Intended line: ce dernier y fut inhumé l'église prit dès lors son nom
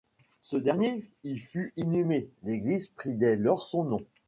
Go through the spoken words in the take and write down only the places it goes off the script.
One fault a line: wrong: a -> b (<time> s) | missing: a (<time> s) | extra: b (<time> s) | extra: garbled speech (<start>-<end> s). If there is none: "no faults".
no faults